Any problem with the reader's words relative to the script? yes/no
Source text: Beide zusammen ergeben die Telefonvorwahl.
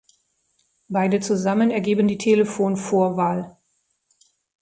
no